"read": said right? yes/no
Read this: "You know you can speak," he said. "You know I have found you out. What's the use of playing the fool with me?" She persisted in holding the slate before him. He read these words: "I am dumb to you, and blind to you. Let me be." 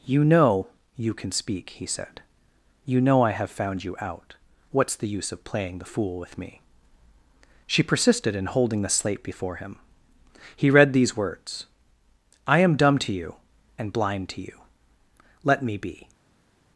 yes